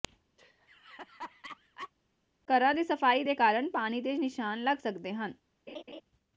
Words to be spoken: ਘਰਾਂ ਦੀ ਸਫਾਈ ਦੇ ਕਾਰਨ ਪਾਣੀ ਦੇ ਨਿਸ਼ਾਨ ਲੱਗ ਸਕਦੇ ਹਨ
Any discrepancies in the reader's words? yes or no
no